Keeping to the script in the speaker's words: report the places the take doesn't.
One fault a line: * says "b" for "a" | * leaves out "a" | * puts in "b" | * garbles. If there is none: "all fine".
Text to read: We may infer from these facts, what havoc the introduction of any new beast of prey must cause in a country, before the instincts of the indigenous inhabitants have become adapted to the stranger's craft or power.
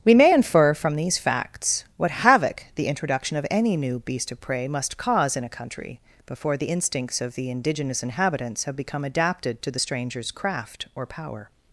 all fine